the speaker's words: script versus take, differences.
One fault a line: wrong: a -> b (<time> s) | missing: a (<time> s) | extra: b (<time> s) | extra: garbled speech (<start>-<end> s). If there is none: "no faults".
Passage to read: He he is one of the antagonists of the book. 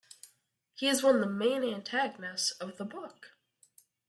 missing: he (0.9 s)
extra: main (1.3 s)